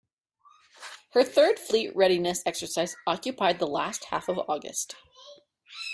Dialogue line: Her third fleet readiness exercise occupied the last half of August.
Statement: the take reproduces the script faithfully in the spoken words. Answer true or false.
true